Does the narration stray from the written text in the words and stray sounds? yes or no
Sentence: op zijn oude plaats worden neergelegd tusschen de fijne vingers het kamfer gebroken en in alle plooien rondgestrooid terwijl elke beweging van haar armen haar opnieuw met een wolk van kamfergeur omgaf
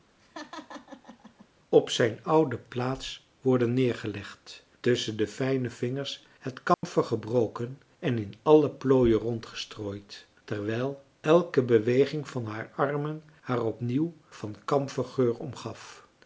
yes